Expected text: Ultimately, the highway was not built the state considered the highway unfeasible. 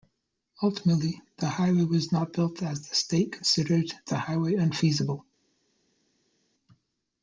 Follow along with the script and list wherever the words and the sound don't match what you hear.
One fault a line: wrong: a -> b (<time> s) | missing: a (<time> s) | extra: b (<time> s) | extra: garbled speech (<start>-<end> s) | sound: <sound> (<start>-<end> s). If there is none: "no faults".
extra: as (2.6 s)